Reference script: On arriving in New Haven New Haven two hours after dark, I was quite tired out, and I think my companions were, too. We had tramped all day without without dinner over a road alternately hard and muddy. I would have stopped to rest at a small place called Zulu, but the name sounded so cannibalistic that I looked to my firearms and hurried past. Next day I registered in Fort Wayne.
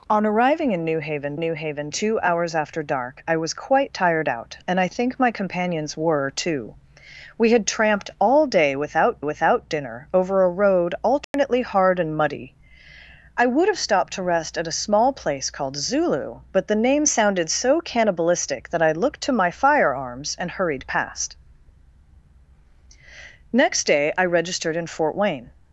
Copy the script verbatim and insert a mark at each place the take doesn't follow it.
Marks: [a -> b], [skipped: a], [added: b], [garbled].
On arriving in New Haven New Haven two hours after dark, I was quite tired out, and I think my companions were, too. We had tramped all day without without dinner over a road alternately hard and muddy. I would have stopped to rest at a small place called Zulu, but the name sounded so cannibalistic that I looked to my firearms and hurried past. Next day I registered in Fort Wayne.